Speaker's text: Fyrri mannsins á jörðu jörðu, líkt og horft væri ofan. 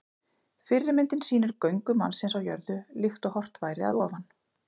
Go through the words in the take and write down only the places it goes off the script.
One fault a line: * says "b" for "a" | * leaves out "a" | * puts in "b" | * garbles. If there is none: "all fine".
* puts in "myndin sýnir göngu"
* leaves out "jörðu"
* puts in "að"